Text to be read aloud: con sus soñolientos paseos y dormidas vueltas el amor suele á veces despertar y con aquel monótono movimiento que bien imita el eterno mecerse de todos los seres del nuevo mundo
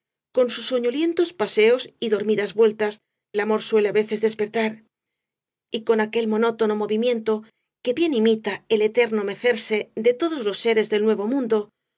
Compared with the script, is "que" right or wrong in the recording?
right